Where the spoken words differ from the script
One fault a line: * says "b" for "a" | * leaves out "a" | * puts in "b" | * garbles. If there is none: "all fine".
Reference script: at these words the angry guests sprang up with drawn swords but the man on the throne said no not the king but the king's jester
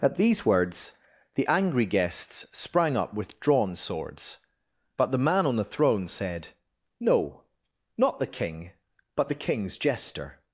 all fine